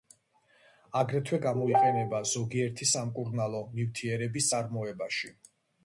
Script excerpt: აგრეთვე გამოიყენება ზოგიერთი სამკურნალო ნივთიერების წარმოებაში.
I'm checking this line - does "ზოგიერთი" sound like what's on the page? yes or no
yes